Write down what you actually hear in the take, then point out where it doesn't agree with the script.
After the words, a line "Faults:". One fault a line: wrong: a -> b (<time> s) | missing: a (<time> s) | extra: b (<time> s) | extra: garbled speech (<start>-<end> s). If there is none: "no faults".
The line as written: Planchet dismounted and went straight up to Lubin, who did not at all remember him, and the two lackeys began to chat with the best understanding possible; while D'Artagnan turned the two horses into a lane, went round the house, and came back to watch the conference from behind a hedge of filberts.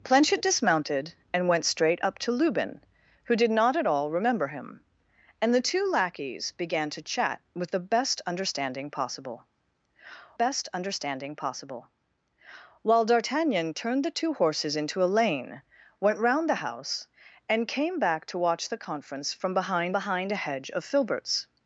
Planchet dismounted and went straight up to Lubin, who did not at all remember him, and the two lackeys began to chat with the best understanding possible best understanding possible; while D'Artagnan turned the two horses into a lane, went round the house, and came back to watch the conference from behind behind a hedge of filberts.
Faults:
extra: best understanding possible (10.3 s)
extra: behind (19.9 s)